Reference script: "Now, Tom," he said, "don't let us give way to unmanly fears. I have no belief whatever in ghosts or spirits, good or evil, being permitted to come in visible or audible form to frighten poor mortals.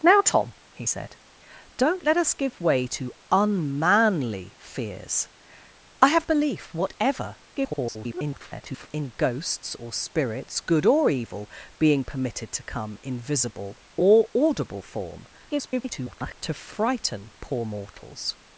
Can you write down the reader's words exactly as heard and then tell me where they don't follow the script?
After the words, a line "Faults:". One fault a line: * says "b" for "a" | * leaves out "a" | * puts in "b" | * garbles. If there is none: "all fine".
"Now, Tom," he said, "don't let us give way to unmanly fears. I have belief whatever [garbled] in ghosts or spirits, good or evil, being permitted to come in visible or audible form [garbled] to frighten poor mortals.
Faults:
* leaves out "no"
* garbles
* garbles